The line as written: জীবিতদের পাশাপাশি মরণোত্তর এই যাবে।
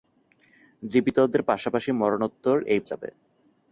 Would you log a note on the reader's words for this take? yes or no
no